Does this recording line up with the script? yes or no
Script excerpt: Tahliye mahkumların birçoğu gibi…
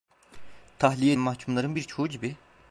yes